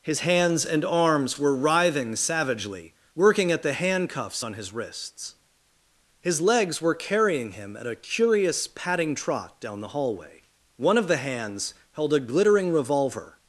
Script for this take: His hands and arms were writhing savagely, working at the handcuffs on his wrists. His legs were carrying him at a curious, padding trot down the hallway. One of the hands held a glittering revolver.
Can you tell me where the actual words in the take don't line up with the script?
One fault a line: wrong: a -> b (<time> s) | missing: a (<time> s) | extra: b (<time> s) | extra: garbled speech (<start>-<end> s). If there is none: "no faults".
no faults